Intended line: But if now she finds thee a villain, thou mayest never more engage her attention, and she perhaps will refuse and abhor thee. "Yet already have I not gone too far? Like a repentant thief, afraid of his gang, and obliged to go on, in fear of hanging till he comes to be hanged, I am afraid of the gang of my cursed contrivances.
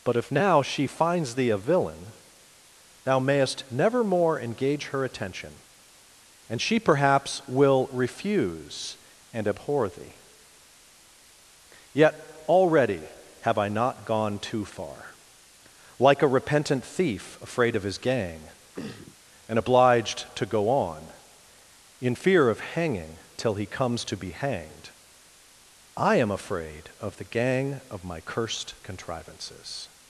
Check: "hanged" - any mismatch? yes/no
no